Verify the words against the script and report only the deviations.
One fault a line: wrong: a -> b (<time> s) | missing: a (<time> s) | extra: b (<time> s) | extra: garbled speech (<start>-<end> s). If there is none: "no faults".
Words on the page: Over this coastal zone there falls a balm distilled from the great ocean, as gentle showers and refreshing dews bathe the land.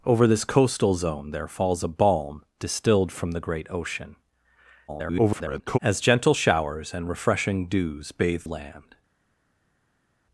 extra: garbled speech (4.9-5.8 s)
missing: the (8.4 s)